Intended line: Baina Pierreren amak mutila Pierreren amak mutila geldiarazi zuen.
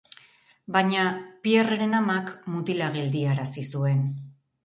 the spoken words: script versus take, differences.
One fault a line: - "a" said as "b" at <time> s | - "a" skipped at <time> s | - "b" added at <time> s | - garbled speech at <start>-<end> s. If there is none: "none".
- "Pierreren amak mutila" skipped at 2.9 s